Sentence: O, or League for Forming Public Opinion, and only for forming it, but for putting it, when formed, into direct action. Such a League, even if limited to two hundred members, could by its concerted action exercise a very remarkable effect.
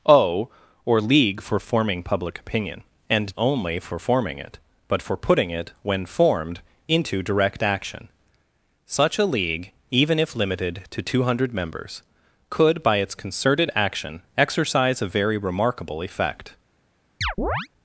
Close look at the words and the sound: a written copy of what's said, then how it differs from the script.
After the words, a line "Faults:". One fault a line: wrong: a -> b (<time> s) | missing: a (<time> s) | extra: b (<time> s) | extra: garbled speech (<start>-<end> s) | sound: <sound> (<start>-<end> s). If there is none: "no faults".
O, or League for Forming Public Opinion, and only for forming it, but for putting it, when formed, into direct action. Such a League, even if limited to two hundred members, could by its concerted action exercise a very remarkable effect.
Faults:
sound: chirp (17.2-17.7 s)